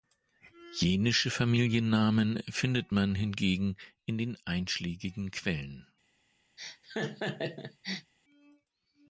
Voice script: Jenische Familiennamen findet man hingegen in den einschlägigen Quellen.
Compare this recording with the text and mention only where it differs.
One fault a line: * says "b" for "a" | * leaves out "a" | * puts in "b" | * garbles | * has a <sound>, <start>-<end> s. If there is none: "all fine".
* has a laugh, 6.6-8.1 s